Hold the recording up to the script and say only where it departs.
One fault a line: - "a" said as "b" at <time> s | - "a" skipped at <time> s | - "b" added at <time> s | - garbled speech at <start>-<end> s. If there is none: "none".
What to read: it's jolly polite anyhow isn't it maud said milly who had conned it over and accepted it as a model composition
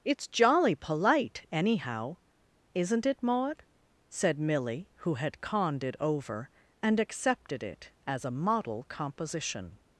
none